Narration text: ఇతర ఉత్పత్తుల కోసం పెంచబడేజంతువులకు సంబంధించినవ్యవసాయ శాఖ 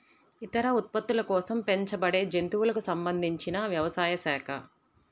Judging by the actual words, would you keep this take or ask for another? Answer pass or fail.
pass